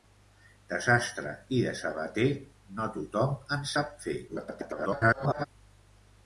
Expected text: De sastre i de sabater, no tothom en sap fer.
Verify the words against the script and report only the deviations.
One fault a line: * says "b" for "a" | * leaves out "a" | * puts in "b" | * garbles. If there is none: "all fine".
* garbles